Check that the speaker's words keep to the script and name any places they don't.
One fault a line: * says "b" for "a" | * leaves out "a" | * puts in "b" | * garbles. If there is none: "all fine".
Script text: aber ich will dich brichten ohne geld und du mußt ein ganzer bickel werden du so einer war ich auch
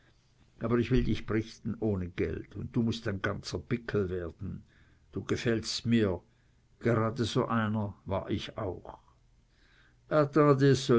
* puts in "gefällst mir gerade"